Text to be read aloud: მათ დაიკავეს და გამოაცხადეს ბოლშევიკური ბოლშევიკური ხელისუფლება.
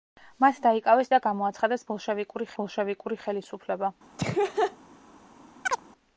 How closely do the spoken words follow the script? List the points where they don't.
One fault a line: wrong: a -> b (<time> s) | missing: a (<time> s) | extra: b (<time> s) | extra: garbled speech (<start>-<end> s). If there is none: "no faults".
no faults